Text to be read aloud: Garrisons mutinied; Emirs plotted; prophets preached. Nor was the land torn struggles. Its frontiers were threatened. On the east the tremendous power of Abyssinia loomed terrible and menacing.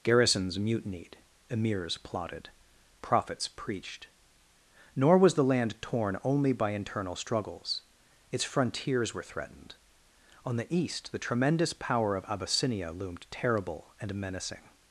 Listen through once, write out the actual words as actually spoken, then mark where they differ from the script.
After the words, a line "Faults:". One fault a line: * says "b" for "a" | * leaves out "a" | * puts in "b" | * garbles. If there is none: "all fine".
Garrisons mutinied; Emirs plotted; prophets preached. Nor was the land torn only by internal struggles. Its frontiers were threatened. On the east the tremendous power of Abyssinia loomed terrible and menacing.
Faults:
* puts in "only by internal"